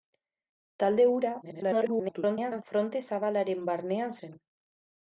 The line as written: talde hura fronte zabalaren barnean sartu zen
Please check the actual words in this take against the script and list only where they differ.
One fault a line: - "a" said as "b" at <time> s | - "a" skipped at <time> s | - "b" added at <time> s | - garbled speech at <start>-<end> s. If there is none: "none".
- garbled speech at 1.4-2.6 s
- "sartu" skipped at 4.2 s